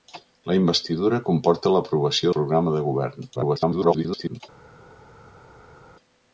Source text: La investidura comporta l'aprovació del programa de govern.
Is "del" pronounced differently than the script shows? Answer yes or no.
yes